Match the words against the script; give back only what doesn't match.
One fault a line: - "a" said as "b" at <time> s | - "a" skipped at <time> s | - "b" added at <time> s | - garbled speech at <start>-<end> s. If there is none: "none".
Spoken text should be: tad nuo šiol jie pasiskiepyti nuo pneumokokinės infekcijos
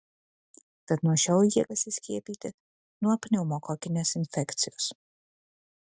none